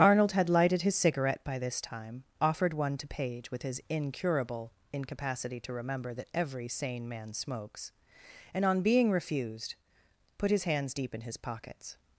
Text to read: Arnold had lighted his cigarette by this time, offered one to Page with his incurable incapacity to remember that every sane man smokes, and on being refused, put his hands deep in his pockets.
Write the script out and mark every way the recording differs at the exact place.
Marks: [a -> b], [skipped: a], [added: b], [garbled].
Arnold had lighted his cigarette by this time, offered one to Page with his incurable incapacity to remember that every sane man smokes, and on being refused, put his hands deep in his pockets.